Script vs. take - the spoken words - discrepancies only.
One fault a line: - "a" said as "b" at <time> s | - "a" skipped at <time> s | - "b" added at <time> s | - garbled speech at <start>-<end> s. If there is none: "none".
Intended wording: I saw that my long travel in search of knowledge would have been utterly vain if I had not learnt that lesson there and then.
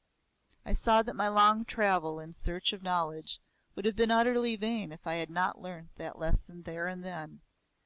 none